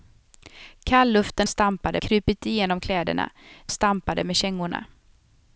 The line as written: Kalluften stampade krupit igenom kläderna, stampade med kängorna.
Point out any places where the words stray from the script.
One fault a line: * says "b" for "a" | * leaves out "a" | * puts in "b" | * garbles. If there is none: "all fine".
all fine